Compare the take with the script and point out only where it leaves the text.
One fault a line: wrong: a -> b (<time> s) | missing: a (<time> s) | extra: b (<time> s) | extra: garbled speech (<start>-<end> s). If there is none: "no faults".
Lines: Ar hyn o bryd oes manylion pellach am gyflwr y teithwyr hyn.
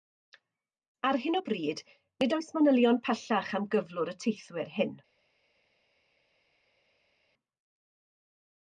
extra: nid (2.2 s)